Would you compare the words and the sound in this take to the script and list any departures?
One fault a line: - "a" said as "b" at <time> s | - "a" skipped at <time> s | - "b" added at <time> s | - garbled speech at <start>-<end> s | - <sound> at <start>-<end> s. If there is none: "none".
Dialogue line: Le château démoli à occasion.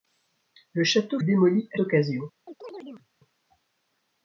- chirp at 2.5-3.1 s